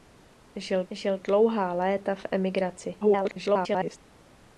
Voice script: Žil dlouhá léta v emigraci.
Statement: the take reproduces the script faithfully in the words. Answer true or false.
false